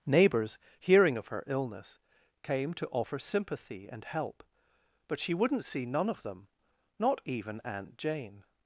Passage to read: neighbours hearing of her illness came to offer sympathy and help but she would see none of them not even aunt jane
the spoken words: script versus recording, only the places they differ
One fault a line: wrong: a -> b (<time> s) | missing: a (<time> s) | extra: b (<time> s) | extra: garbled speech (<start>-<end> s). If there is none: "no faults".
wrong: would -> wouldn't (5.3 s)